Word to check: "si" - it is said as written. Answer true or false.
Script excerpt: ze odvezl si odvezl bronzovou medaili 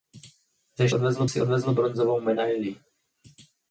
true